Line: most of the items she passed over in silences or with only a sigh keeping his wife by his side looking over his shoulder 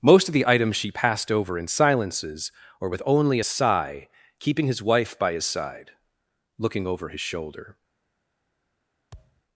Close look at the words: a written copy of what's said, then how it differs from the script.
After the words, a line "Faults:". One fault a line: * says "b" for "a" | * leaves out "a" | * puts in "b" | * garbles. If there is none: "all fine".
most of the items she passed over in silences or with only a sigh keeping his wife by his side looking over his shoulder
Faults:
all fine